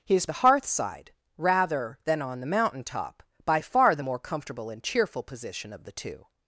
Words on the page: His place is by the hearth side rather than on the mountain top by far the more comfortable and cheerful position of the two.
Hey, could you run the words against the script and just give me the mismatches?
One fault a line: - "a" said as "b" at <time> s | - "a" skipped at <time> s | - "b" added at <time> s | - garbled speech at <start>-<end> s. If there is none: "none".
- "place is by" skipped at 0.2 s